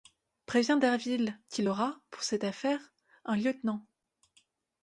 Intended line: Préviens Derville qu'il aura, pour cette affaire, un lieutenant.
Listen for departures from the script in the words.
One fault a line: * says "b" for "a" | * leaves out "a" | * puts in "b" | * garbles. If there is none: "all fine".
all fine